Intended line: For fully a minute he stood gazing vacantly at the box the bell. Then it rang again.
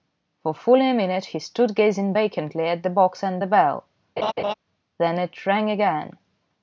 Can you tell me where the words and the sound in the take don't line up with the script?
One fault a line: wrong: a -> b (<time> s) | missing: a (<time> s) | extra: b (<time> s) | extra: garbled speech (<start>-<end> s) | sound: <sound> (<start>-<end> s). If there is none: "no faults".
extra: and (3.2 s)
sound: laugh (4.2-4.5 s)